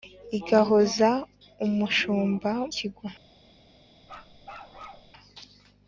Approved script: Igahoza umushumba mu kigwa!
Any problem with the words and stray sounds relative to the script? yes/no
yes